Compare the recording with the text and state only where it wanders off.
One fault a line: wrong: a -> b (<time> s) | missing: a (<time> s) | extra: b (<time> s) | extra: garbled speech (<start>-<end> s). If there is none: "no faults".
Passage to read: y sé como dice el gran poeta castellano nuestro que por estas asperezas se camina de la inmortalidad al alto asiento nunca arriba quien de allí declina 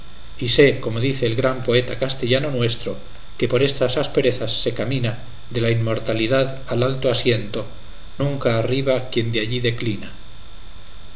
no faults